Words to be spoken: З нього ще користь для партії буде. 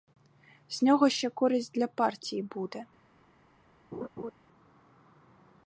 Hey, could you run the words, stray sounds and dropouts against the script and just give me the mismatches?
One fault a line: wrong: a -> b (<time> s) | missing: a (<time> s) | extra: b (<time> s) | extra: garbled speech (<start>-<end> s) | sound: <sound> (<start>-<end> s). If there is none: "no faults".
sound: laugh (3.9-4.3 s)